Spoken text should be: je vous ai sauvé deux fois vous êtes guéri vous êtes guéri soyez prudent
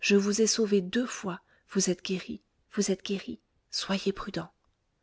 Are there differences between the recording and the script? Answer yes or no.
no